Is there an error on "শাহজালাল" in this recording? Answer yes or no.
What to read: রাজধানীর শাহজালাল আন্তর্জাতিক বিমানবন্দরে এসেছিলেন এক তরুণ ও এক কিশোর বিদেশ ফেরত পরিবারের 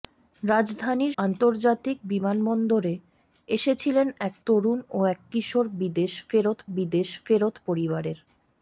yes